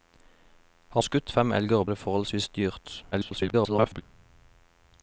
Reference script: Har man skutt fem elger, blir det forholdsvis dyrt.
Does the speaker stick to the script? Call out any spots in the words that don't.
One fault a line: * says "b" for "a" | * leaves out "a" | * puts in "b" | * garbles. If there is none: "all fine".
* leaves out "man"
* leaves out "blir"
* garbles